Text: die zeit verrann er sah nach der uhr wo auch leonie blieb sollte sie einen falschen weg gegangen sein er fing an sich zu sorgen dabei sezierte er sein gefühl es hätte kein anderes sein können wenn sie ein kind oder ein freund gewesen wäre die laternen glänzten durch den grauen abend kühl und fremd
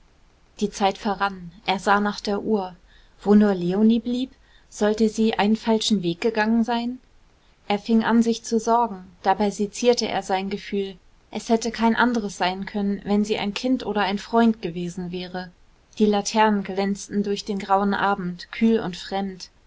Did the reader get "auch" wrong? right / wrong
wrong